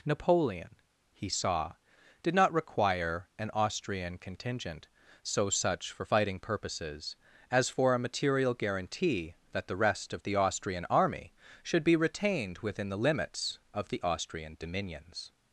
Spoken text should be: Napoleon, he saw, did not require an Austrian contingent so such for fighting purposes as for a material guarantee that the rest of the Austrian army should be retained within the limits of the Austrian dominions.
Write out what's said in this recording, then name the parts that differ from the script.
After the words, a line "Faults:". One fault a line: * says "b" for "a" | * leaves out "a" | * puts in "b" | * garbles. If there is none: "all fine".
Napoleon, he saw, did not require an Austrian contingent so such for fighting purposes as for a material guarantee that the rest of the Austrian army should be retained within the limits of the Austrian dominions.
Faults:
all fine